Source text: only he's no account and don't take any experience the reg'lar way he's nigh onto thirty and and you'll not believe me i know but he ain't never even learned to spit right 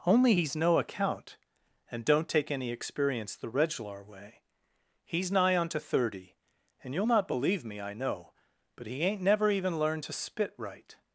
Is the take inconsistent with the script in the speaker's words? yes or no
yes